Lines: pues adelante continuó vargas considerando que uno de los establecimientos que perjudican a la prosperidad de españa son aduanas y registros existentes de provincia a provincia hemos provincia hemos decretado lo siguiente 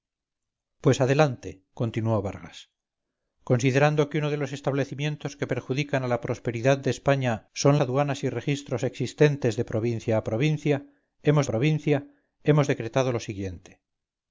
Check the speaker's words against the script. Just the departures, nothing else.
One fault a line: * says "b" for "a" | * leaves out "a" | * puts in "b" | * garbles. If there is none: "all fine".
all fine